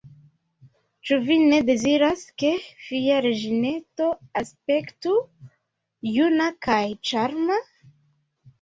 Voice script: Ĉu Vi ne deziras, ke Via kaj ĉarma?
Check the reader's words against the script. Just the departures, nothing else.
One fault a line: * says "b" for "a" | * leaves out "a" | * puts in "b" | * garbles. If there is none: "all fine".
* puts in "reĝineto aspektu juna"